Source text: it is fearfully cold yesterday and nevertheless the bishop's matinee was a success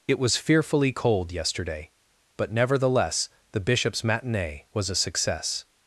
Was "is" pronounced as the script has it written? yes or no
no